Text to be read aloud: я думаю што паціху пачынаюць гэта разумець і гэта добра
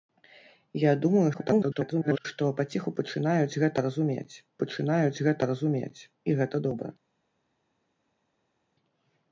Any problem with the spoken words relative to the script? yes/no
yes